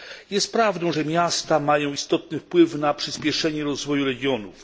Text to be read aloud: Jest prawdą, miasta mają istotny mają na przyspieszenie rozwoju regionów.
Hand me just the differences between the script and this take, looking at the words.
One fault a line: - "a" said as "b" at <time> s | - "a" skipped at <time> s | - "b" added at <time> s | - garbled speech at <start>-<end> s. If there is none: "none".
- "że" added at 0.9 s
- "mają" said as "wpływ" at 2.4 s